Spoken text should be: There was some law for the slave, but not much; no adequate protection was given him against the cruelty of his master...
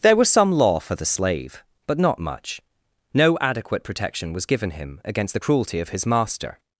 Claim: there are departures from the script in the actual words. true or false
false